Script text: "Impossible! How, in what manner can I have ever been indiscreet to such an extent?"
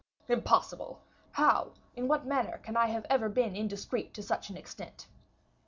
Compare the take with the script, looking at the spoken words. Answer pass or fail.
pass